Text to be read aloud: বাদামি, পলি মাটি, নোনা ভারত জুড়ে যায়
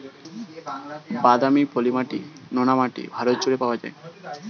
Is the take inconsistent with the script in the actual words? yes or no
yes